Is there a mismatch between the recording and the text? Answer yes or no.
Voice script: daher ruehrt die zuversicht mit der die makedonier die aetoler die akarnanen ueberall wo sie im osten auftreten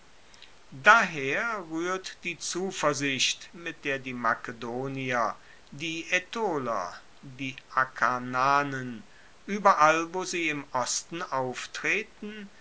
no